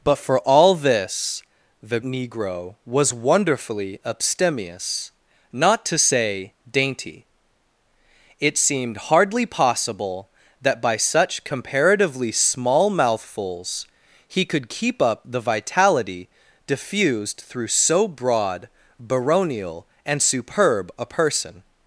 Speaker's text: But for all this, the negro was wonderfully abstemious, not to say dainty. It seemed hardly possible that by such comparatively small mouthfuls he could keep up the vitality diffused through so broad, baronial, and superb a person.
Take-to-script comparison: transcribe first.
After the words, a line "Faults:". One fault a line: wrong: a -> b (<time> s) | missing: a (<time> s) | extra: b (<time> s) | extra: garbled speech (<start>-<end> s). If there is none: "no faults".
But for all this, the negro was wonderfully abstemious, not to say dainty. It seemed hardly possible that by such comparatively small mouthfuls he could keep up the vitality diffused through so broad, baronial, and superb a person.
Faults:
no faults